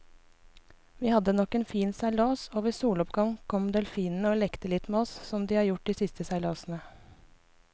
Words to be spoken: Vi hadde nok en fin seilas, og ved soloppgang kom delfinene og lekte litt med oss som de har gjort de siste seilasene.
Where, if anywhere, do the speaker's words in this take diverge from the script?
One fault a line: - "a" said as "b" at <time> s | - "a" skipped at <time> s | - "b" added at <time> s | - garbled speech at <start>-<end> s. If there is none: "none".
none